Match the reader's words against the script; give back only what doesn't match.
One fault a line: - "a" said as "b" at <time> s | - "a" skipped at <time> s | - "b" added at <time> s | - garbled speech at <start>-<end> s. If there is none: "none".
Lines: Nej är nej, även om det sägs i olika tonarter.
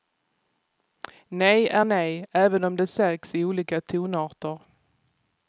none